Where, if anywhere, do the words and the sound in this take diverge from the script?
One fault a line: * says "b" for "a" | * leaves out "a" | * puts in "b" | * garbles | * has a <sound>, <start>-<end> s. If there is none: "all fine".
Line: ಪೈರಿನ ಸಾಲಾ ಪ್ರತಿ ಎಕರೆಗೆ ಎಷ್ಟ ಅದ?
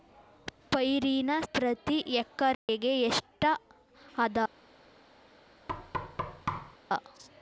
* leaves out "ಸಾಲಾ"
* has a dropout, 2.5-2.7 s
* has a thud, 5.7-6.8 s